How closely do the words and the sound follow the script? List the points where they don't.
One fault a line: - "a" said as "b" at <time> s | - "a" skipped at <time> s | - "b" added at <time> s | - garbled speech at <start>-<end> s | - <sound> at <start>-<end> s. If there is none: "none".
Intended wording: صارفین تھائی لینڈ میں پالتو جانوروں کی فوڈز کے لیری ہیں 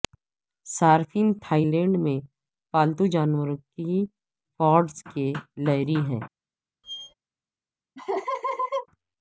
- squeak at 6.8-7.1 s
- laugh at 8.0-8.9 s